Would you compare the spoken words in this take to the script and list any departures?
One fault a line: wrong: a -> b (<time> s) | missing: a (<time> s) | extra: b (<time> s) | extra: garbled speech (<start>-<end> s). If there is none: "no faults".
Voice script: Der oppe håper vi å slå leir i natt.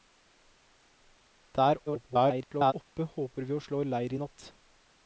extra: garbled speech (1.9-2.7 s)